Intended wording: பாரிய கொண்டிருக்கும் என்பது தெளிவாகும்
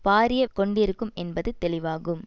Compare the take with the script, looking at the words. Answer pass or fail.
pass